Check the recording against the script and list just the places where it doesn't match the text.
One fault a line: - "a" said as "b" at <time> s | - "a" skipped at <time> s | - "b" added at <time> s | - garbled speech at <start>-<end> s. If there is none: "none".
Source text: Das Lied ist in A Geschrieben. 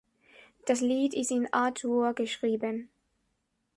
- "Dur" added at 1.7 s